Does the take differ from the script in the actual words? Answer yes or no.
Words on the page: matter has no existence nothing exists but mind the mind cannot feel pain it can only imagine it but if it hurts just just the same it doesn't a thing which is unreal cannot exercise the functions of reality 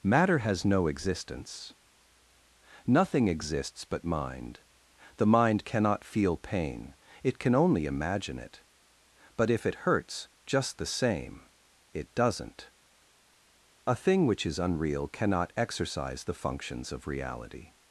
yes